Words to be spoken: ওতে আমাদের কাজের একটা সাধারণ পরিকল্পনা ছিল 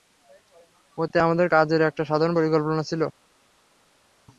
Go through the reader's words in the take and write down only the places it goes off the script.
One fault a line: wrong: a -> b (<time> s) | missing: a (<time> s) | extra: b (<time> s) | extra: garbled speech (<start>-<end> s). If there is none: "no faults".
no faults